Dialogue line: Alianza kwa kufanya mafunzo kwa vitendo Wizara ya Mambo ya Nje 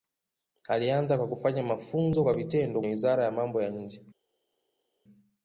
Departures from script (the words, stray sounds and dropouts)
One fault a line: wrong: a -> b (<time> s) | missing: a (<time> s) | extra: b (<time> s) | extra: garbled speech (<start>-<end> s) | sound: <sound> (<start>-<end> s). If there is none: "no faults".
no faults